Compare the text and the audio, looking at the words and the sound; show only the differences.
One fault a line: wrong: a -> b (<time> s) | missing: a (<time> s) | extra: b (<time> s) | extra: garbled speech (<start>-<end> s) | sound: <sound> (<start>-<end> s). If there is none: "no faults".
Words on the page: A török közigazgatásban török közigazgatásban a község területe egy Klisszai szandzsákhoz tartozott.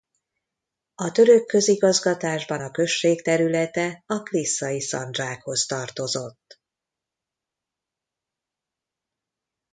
missing: török közigazgatásban (2.6 s)
wrong: egy -> a (4.1 s)